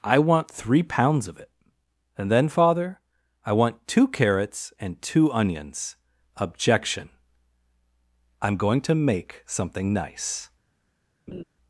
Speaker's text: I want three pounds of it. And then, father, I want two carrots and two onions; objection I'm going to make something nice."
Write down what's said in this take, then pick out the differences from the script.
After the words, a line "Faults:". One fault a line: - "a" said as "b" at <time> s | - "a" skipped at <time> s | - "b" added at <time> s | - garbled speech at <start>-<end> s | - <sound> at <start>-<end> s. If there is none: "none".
I want three pounds of it. And then, father, I want two carrots and two onions; objection I'm going to make something nice."
Faults:
- laugh at 11.3-11.4 s